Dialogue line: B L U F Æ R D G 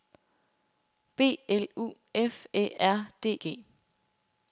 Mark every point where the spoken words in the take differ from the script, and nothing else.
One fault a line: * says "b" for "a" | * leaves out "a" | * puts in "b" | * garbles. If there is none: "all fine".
all fine